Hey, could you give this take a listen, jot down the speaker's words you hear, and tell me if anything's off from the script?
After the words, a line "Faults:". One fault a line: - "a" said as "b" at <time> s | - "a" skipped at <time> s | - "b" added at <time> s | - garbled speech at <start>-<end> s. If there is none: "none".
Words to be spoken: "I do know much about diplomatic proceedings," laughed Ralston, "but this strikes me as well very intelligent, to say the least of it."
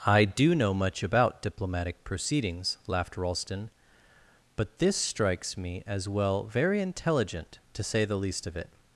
"I do know much about diplomatic proceedings," laughed Ralston, "but this strikes me as well very intelligent, to say the least of it."
Faults:
none